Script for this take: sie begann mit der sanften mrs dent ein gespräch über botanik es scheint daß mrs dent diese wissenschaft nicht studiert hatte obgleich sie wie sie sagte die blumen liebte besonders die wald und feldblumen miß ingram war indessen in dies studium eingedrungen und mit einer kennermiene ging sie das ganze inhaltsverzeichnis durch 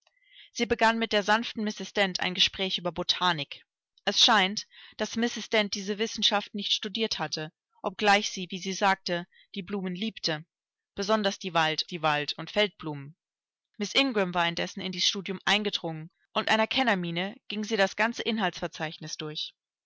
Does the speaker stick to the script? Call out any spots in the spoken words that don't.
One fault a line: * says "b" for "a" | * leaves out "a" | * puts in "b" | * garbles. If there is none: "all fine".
* puts in "die wald"
* leaves out "mit"